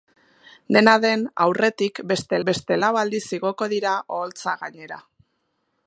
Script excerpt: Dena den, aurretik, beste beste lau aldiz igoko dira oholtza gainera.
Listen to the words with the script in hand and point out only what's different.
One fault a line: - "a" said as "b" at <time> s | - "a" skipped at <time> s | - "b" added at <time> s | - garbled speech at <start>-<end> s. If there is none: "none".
none